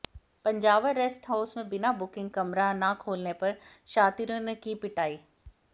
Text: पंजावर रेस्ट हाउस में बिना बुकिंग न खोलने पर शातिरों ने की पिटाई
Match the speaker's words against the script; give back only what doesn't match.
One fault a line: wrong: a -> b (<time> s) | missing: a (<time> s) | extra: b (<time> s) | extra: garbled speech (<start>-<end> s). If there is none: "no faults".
extra: कमरा (2.3 s)